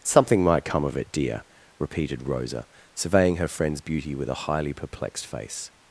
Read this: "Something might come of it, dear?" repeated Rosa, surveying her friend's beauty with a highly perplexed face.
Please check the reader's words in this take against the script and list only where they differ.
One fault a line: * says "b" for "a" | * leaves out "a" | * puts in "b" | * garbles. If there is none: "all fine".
all fine